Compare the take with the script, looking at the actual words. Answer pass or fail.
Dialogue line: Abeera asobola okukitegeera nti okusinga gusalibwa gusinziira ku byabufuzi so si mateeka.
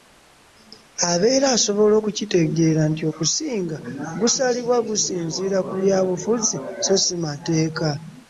pass